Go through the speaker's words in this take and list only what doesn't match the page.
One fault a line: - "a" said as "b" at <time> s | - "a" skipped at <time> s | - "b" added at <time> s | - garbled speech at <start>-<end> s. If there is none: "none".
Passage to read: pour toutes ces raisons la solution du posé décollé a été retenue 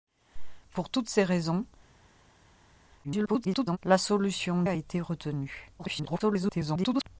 - garbled speech at 3.0-3.8 s
- "du posé décollé" skipped at 4.6 s
- garbled speech at 5.8-7.0 s